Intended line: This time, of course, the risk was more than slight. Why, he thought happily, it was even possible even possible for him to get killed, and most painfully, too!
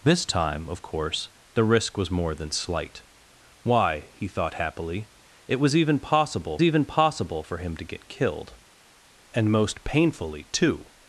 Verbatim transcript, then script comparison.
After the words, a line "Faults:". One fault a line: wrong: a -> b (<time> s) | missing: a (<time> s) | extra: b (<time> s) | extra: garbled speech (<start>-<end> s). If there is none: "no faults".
This time, of course, the risk was more than slight. Why, he thought happily, it was even possible even possible for him to get killed, and most painfully, too!
Faults:
no faults